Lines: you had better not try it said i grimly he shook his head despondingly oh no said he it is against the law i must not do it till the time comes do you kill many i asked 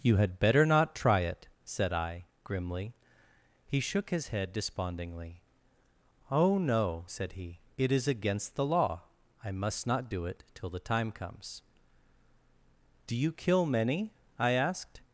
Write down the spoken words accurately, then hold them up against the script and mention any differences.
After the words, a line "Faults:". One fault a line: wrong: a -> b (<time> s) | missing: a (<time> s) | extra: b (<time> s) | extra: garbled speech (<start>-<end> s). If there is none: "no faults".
you had better not try it said i grimly he shook his head despondingly oh no said he it is against the law i must not do it till the time comes do you kill many i asked
Faults:
no faults